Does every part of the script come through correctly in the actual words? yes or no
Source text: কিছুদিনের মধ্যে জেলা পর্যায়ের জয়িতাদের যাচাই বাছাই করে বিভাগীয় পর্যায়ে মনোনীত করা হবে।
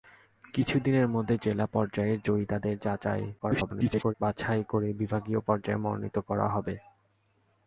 no